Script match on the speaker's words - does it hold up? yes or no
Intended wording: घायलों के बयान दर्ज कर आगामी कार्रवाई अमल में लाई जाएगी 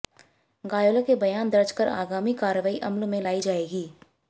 yes